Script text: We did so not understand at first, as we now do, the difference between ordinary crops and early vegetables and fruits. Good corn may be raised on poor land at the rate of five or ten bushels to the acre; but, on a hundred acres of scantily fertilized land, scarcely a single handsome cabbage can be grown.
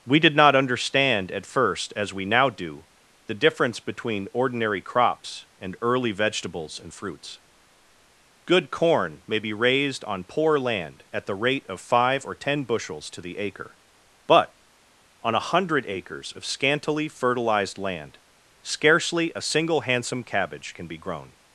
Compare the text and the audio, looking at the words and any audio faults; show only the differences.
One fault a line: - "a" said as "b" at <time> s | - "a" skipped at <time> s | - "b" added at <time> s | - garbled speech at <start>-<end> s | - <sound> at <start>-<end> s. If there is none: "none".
- "so" skipped at 0.3 s